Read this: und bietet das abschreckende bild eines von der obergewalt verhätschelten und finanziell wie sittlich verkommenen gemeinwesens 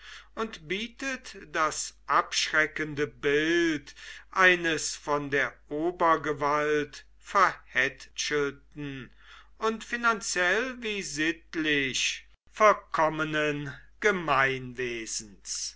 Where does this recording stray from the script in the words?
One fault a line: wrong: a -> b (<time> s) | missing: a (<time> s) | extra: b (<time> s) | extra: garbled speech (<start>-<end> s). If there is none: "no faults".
no faults